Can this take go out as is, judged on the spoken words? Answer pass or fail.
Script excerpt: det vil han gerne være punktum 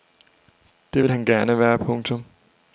pass